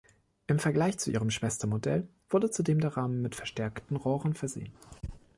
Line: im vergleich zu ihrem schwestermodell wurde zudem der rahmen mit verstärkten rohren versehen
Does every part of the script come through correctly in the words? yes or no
yes